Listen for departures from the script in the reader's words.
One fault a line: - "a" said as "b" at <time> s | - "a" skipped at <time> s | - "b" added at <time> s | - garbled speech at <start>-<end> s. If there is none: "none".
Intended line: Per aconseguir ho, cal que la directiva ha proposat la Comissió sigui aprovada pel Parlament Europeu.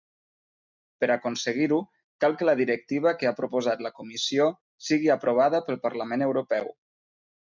- "que" added at 3.2 s